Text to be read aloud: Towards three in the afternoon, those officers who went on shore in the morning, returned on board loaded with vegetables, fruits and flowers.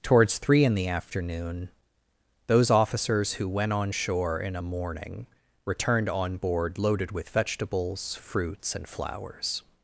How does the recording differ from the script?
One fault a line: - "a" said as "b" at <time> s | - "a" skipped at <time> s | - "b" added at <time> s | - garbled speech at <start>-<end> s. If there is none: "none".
- "the" said as "a" at 4.5 s